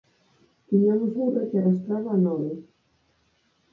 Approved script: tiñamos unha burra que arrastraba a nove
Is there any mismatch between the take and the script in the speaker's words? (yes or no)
yes